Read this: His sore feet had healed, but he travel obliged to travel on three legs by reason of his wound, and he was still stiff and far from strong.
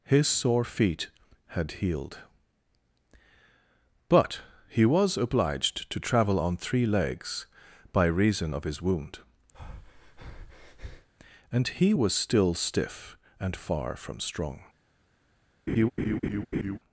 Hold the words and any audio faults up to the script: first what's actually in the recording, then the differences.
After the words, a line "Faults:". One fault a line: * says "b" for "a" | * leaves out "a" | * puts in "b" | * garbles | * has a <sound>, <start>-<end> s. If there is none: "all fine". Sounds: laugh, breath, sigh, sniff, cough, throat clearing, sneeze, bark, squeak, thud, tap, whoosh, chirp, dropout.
His sore feet had healed, but he was obliged to travel on three legs by reason of his wound, and he was still stiff and far from strong.
Faults:
* says "was" for "travel"
* has a breath, 9.5-11.1 s
* has a laugh, 15.7-16.8 s